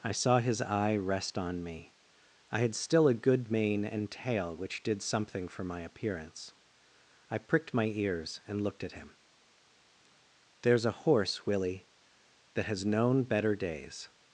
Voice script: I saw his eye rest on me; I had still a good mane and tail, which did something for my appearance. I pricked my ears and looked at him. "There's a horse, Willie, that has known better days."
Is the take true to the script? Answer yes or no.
yes